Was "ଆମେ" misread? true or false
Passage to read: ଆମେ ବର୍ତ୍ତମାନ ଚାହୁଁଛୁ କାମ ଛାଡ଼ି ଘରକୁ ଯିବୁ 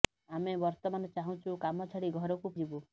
false